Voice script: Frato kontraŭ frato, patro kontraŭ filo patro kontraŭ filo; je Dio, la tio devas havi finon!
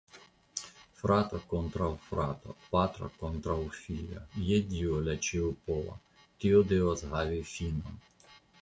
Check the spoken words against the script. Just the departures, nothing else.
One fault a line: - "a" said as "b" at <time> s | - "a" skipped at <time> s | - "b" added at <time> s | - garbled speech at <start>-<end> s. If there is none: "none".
- "patro kontraŭ filo" skipped at 4.2 s
- "ĉiopova" added at 5.3 s